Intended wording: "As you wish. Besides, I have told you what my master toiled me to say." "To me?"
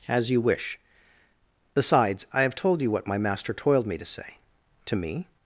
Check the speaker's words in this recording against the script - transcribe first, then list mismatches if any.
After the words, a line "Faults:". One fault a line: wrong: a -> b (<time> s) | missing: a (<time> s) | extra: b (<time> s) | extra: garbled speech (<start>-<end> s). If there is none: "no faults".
"As you wish. Besides, I have told you what my master toiled me to say." "To me?"
Faults:
no faults